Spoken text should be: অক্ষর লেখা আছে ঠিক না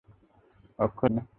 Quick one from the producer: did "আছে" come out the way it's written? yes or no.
no